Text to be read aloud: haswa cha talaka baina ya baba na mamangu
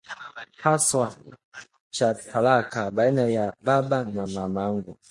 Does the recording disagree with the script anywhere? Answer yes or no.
no